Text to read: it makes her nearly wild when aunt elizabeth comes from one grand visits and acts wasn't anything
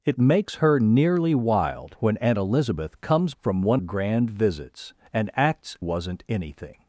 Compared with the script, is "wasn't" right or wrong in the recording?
right